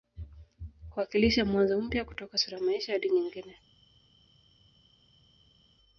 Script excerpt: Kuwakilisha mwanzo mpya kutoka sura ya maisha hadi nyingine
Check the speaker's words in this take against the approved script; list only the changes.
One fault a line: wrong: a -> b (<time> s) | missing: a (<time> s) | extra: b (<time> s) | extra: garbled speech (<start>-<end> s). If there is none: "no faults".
no faults